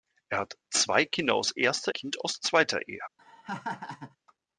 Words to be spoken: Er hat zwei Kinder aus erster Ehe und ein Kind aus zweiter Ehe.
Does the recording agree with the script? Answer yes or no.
no